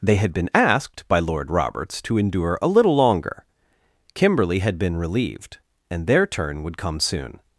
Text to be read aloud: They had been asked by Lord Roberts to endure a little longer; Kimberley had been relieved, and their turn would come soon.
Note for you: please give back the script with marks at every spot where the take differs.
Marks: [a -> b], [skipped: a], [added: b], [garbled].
They had been asked by Lord Roberts to endure a little longer; Kimberley had been relieved, and their turn would come soon.